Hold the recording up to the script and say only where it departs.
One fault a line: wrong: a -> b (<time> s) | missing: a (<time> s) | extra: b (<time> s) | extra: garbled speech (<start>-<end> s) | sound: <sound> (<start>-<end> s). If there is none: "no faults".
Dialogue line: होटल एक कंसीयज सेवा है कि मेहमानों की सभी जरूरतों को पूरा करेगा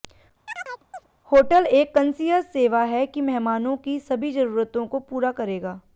sound: chirp (0.5-1.1 s)